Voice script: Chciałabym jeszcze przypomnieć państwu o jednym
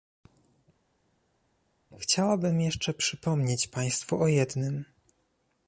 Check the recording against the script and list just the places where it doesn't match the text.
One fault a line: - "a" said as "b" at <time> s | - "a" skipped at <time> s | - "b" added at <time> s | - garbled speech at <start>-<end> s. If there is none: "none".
none